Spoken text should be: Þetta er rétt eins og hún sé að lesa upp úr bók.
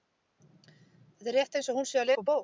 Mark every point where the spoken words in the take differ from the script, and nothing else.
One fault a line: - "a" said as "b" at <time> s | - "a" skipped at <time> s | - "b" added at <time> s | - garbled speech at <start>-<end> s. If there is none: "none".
- "lesa" skipped at 2.1 s